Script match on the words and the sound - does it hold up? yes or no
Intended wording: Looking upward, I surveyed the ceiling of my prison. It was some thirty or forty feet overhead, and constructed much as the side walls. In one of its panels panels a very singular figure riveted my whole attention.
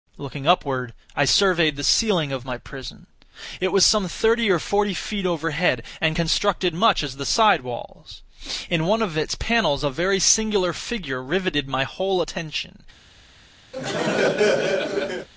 no